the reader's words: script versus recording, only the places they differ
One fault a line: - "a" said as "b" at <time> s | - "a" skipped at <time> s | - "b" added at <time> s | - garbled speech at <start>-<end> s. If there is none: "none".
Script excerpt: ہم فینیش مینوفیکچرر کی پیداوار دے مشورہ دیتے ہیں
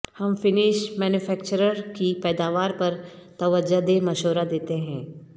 - "پر توجہ" added at 2.8 s